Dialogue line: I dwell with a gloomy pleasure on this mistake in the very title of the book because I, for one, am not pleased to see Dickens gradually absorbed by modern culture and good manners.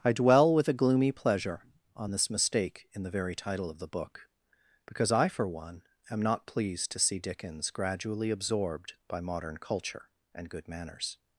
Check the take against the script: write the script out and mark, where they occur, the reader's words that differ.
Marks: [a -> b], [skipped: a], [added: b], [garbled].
I dwell with a gloomy pleasure on this mistake in the very title of the book because I, for one, am not pleased to see Dickens gradually absorbed by modern culture and good manners.